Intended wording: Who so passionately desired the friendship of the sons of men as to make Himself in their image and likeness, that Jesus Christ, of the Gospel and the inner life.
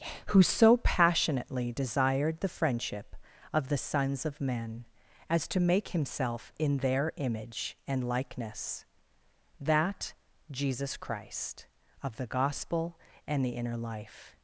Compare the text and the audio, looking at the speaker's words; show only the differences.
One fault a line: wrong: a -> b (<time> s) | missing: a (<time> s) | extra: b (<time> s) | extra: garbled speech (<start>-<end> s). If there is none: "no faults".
no faults